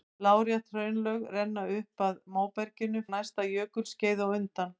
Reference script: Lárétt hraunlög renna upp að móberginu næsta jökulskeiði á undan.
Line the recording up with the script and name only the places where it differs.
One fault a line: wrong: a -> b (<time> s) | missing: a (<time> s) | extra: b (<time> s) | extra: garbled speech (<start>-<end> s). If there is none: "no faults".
no faults